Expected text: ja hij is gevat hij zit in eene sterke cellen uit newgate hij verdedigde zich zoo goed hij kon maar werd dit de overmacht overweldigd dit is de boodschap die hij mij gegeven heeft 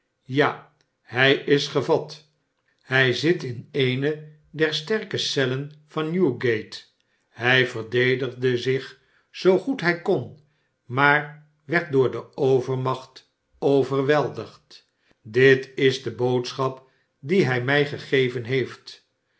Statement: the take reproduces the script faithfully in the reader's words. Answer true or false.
false